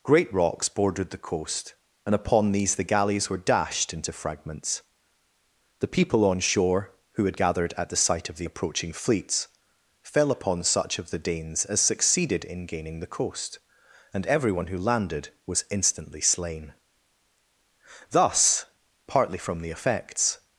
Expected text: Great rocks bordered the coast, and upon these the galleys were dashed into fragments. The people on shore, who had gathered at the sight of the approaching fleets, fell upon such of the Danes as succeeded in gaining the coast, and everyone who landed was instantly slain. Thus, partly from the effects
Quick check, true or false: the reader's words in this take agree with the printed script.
true